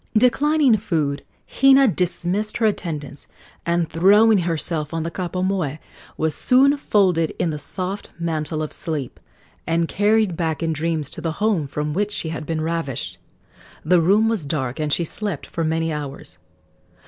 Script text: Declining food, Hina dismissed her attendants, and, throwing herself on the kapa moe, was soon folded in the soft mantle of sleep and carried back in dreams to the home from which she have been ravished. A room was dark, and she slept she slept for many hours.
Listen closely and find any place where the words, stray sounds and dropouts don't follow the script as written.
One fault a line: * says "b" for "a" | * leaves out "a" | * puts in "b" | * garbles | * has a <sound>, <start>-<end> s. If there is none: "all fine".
* says "had" for "have"
* says "The" for "A"
* leaves out "she slept"